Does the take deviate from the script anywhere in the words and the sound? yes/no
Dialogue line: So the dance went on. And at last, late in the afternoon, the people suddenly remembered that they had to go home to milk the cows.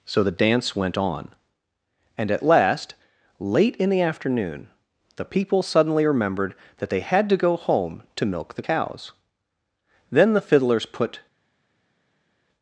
yes